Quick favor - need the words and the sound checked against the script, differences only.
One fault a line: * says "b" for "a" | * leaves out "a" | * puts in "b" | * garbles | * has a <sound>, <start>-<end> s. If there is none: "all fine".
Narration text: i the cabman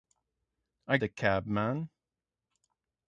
all fine